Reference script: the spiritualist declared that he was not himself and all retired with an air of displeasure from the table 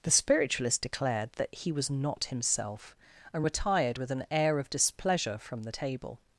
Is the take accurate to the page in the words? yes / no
no